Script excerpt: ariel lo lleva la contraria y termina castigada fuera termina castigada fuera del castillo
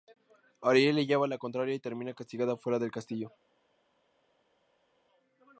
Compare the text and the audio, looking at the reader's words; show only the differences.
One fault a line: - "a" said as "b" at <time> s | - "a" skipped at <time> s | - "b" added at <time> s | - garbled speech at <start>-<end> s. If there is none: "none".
- "lo" said as "le" at 0.9 s
- "termina castigada fuera" skipped at 2.8 s